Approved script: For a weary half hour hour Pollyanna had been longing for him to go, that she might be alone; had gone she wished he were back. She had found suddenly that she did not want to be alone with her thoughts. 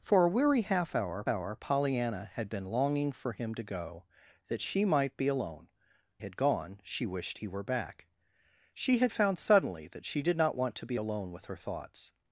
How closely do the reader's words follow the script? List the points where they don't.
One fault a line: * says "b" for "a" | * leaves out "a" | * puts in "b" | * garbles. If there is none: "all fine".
all fine